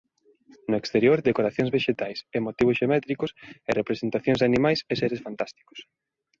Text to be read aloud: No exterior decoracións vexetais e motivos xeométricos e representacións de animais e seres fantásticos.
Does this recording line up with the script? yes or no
yes